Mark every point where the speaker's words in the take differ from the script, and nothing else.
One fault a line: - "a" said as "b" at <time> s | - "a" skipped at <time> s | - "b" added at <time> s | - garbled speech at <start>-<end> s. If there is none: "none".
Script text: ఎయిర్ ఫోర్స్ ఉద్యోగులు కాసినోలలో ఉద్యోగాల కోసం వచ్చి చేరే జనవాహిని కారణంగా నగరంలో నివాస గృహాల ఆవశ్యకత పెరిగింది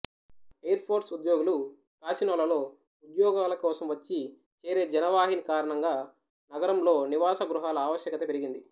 none